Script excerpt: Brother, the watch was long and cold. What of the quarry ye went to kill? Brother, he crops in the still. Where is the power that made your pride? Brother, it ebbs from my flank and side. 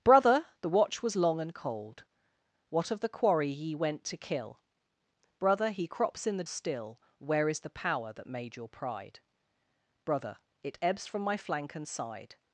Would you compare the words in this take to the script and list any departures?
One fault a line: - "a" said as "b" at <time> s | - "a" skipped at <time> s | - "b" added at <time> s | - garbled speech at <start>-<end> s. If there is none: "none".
none